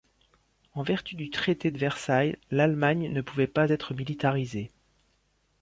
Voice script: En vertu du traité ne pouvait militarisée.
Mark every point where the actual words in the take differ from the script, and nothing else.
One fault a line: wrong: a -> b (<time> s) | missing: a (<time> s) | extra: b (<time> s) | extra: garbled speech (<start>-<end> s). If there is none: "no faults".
extra: de Versailles l'Allemagne (1.7 s)
extra: pas être (3.5 s)